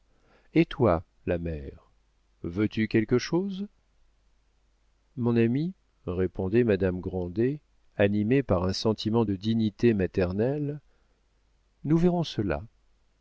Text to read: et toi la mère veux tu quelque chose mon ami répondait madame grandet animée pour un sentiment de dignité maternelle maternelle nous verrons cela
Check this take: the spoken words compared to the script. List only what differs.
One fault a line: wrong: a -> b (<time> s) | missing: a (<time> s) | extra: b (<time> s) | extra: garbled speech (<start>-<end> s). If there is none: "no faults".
wrong: pour -> par (8.4 s)
missing: maternelle (10.8 s)